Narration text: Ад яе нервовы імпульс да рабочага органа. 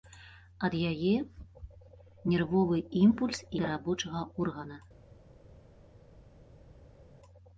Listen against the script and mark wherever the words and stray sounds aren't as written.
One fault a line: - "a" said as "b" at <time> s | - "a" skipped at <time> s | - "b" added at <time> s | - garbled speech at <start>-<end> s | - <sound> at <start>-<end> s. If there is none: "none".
none